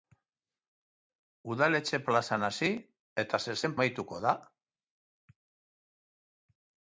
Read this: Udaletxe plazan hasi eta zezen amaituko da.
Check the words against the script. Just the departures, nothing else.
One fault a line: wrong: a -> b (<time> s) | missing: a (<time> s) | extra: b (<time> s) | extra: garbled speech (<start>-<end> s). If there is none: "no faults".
no faults